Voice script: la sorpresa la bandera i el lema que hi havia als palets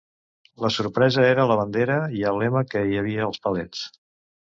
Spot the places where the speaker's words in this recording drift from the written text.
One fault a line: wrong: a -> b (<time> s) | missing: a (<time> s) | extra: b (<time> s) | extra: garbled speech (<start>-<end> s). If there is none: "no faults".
extra: era (1.3 s)